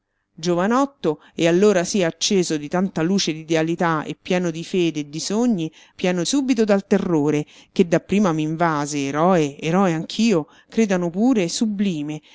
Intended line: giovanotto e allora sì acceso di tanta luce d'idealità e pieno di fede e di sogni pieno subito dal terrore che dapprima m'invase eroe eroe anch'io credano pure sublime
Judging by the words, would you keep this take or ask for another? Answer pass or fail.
pass